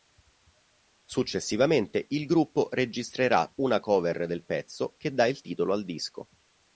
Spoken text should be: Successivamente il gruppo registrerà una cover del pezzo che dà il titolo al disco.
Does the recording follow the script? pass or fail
pass